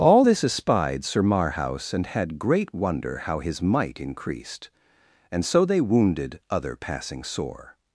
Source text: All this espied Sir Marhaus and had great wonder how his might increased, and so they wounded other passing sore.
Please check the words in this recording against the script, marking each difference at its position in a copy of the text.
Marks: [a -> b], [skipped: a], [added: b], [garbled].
All this espied Sir Marhaus and had great wonder how his might increased, and so they wounded other passing sore.